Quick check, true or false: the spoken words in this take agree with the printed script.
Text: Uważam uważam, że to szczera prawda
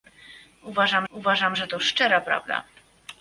true